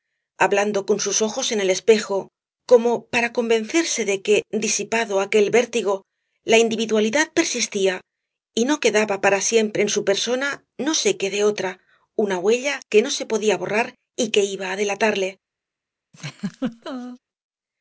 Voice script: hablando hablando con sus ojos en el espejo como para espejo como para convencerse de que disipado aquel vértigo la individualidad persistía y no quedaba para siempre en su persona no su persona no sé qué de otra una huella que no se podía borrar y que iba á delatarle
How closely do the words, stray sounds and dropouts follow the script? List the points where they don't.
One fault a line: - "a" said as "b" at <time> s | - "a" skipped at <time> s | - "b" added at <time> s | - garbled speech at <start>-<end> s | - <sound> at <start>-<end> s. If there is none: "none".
- "hablando" skipped at 0.9 s
- "espejo como para" skipped at 3.3 s
- "su persona no" skipped at 10.9 s
- laugh at 16.1-17.2 s